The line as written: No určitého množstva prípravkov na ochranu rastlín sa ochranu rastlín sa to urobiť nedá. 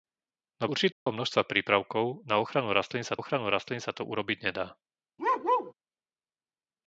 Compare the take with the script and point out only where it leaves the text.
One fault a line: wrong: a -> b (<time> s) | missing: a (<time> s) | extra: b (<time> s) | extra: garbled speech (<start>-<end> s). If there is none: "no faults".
no faults